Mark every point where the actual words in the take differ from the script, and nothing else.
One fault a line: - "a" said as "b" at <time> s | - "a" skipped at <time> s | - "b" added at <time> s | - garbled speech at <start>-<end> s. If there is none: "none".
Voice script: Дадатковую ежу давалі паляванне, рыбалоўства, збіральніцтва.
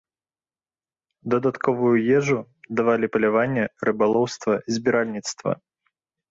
none